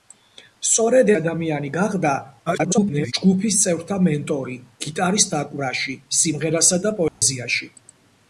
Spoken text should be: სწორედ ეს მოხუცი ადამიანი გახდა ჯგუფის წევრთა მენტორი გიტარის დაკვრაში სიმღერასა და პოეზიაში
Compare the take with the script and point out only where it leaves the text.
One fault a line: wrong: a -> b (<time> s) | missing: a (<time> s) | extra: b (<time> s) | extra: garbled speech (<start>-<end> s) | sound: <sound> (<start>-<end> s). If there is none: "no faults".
missing: ეს მოხუცი (1.1 s)
extra: garbled speech (2.5-3.1 s)
sound: dropout (7.1-7.2 s)